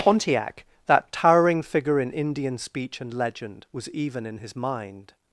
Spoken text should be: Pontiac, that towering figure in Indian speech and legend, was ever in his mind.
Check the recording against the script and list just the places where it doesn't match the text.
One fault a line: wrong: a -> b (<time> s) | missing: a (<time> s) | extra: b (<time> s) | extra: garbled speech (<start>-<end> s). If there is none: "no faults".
wrong: ever -> even (3.9 s)